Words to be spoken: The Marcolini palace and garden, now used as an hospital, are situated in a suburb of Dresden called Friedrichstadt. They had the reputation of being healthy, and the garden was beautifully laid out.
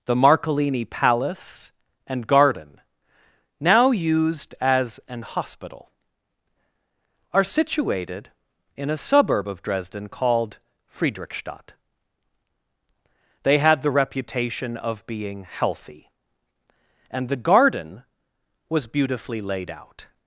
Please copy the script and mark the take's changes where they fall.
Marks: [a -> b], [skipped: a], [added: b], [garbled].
The Marcolini palace and garden, now used as an hospital, are situated in a suburb of Dresden called Friedrichstadt. They had the reputation of being healthy, and the garden was beautifully laid out.